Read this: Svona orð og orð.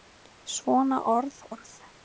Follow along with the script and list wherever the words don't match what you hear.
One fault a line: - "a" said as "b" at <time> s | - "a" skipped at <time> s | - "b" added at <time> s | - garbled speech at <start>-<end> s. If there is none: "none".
- "og" skipped at 1.4 s